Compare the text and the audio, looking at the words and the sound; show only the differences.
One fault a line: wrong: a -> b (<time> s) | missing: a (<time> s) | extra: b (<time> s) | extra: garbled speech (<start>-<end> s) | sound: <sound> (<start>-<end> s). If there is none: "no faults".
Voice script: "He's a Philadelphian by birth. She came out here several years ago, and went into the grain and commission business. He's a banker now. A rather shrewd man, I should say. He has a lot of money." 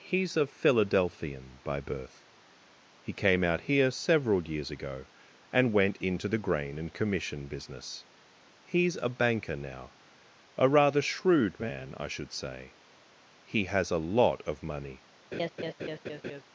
wrong: She -> He (3.0 s)
sound: laugh (15.3-16.4 s)